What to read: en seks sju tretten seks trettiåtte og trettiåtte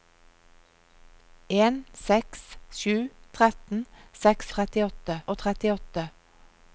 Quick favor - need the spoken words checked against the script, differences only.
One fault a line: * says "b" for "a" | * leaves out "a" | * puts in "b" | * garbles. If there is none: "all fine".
all fine